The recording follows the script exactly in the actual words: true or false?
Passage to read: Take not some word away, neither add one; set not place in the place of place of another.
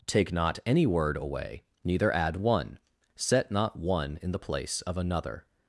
false